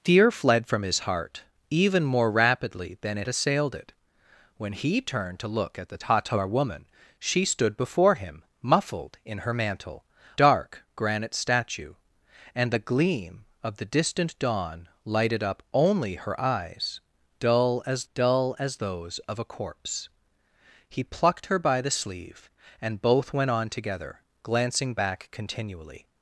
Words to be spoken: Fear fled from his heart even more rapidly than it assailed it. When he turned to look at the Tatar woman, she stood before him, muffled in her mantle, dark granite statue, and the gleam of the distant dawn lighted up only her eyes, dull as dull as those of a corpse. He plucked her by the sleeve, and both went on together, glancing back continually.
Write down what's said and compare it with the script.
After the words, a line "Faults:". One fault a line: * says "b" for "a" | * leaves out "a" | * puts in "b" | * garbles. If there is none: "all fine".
Fear fled from his heart even more rapidly than it assailed it. When he turned to look at the Tatar woman, she stood before him, muffled in her mantle, dark granite statue, and the gleam of the distant dawn lighted up only her eyes, dull as dull as those of a corpse. He plucked her by the sleeve, and both went on together, glancing back continually.
Faults:
all fine